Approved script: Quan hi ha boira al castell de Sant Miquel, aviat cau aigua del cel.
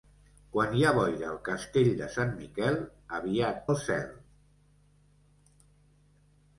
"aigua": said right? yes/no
no